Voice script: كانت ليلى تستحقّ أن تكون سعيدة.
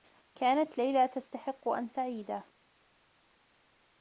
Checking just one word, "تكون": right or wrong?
wrong